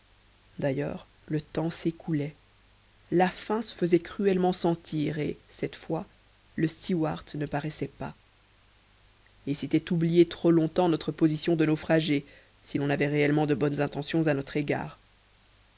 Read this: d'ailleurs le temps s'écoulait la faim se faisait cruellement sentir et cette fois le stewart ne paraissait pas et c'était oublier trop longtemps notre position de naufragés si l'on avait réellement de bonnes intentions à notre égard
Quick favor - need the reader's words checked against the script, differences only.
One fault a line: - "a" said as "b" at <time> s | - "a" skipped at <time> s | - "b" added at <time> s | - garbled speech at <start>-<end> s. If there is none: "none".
none